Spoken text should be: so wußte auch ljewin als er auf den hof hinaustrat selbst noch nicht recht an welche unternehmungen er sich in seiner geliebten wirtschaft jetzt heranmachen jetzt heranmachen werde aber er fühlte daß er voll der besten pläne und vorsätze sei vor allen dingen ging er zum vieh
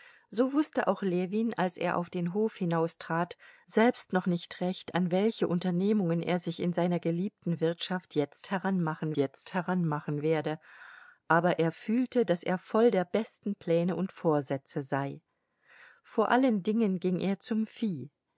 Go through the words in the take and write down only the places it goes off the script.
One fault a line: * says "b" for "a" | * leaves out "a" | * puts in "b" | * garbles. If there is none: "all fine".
all fine